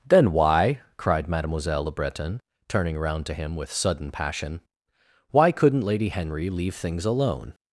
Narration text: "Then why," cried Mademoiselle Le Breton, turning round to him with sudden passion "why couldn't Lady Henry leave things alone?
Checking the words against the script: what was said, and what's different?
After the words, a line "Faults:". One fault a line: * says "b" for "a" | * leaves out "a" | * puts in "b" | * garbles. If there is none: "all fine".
"Then why," cried Mademoiselle Le Breton, turning round to him with sudden passion "why couldn't Lady Henry leave things alone?
Faults:
all fine